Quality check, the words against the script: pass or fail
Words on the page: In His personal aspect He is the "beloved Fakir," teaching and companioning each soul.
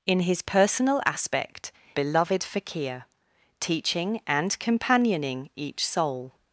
fail